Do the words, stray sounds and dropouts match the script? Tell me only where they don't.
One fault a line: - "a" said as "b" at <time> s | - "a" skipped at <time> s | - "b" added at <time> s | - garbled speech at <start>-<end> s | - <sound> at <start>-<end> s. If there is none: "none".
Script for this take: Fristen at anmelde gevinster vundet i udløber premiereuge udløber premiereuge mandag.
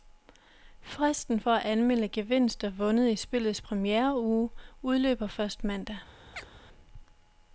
- "for" added at 1.4 s
- "udløber" said as "spillets" at 3.2 s
- "premiereuge" said as "først" at 5.3 s
- chirp at 6.3-6.5 s